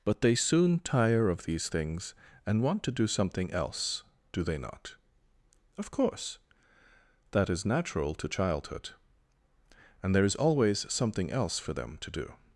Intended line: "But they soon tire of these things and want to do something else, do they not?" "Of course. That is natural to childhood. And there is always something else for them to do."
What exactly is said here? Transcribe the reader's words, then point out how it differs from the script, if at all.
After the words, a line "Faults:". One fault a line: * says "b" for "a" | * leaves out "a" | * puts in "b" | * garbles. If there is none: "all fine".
"But they soon tire of these things and want to do something else, do they not?" "Of course. That is natural to childhood. And there is always something else for them to do."
Faults:
all fine